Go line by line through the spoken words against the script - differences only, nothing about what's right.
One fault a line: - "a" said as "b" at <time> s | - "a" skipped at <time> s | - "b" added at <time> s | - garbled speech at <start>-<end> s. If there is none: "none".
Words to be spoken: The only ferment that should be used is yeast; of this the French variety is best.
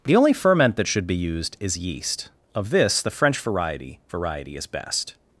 - "variety" added at 4.1 s